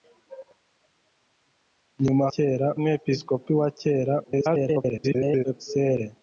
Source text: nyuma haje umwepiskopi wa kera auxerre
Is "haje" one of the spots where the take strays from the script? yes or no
yes